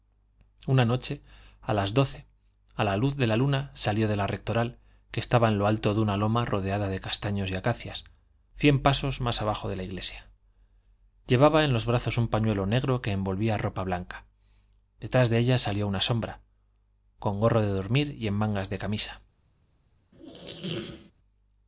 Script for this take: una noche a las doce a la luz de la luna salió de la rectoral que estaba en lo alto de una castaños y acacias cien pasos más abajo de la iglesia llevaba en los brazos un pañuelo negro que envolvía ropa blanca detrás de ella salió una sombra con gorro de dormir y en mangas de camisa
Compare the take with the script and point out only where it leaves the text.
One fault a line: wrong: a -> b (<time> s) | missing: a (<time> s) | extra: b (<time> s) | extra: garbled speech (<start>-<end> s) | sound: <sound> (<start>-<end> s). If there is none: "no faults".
extra: loma rodeada de (6.2 s)
sound: squeak (20.1-21.1 s)